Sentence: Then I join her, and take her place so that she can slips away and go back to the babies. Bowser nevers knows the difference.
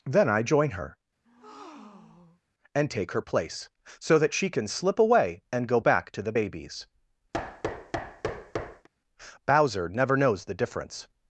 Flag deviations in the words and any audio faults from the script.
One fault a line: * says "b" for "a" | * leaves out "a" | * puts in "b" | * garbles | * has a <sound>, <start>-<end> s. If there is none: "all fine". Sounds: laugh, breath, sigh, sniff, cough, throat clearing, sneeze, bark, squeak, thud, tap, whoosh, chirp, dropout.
* has a breath, 1.2-2.4 s
* says "slip" for "slips"
* has a thud, 7.3-8.9 s
* says "never" for "nevers"